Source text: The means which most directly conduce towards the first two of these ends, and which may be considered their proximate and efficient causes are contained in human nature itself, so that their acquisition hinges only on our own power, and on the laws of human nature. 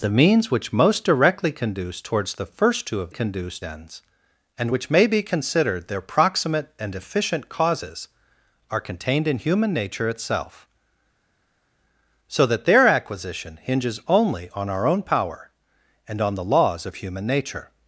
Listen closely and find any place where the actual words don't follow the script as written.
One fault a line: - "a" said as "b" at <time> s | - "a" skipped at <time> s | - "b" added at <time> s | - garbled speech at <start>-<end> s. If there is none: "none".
- "these" said as "conduce" at 3.1 s